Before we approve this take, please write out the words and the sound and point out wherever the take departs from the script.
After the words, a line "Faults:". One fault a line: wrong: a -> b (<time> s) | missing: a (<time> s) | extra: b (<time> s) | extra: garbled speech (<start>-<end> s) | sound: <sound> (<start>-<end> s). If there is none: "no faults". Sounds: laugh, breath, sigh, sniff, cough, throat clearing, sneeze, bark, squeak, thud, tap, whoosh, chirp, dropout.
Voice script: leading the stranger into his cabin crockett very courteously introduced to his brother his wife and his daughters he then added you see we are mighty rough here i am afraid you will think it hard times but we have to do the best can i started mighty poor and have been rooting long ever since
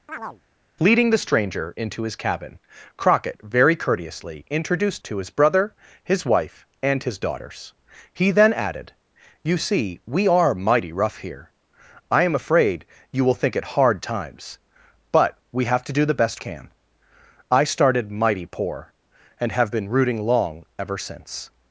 leading the stranger into his cabin crockett very courteously introduced to his brother his wife and his daughters he then added you see we are mighty rough here i am afraid you will think it hard times but we have to do the best can i started mighty poor and have been rooting long ever since
Faults:
sound: chirp (0.1-0.4 s)